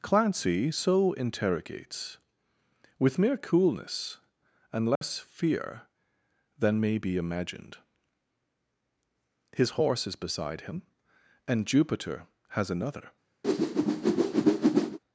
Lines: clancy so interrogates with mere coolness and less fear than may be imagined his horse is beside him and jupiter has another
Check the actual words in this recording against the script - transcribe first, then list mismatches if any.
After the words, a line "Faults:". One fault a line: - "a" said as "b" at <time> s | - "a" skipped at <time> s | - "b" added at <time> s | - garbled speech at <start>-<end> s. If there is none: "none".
clancy so interrogates with mere coolness and less fear than may be imagined his horse is beside him and jupiter has another
Faults:
none